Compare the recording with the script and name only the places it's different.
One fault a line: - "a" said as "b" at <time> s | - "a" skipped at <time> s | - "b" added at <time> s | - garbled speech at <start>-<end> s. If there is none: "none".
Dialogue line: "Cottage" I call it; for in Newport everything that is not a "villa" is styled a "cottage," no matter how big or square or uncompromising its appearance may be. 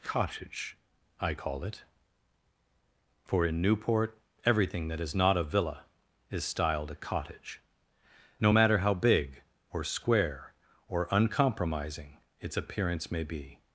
none